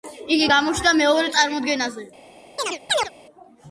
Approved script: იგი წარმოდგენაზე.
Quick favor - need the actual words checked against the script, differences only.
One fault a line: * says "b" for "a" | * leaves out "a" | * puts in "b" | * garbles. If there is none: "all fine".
* puts in "გამოჩნდა მეორე"